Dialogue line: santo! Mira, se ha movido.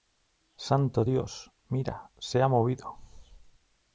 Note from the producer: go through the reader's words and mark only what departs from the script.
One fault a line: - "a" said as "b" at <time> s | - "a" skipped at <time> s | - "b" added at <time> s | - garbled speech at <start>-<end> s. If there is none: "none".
- "Dios" added at 1.0 s